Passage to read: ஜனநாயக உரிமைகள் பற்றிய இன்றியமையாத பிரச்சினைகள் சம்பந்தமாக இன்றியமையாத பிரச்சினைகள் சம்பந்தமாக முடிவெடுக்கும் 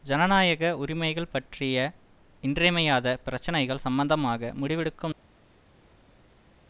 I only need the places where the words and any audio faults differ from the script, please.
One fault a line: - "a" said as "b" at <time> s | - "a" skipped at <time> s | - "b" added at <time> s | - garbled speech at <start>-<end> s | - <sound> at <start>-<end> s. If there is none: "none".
- "இன்றியமையாத பிரச்சினைகள் சம்பந்தமாக" skipped at 4.5 s